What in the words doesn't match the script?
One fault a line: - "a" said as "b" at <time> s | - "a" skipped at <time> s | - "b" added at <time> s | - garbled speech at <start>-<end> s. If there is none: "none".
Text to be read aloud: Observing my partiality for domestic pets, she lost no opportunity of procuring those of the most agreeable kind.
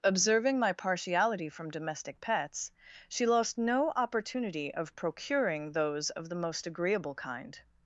- "for" said as "from" at 1.5 s